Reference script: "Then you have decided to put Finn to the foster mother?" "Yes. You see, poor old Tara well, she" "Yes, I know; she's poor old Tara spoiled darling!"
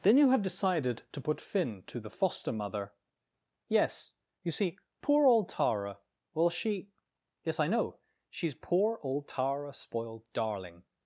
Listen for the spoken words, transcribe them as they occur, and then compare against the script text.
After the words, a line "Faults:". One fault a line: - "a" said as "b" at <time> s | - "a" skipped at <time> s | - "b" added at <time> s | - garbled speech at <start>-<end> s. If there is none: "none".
"Then you have decided to put Finn to the foster mother?" "Yes. You see, poor old Tara well, she" "Yes, I know; she's poor old Tara spoiled darling!"
Faults:
none